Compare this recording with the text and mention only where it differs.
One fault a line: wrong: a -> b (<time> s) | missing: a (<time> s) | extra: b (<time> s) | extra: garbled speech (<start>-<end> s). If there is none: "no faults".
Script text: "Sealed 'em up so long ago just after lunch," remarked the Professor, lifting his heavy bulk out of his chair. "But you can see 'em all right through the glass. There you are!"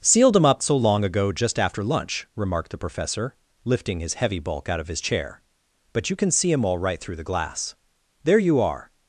no faults